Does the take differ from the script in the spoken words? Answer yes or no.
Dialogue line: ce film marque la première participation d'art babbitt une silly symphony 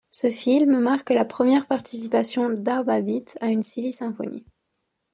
yes